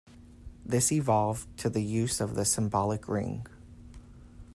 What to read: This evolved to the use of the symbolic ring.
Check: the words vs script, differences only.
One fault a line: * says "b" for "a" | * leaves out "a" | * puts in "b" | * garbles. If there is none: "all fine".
all fine